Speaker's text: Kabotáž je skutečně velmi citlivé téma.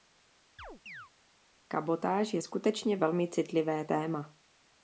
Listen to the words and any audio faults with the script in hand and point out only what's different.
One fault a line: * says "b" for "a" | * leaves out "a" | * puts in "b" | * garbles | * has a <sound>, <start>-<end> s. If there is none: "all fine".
* has a chirp, 0.6-1.1 s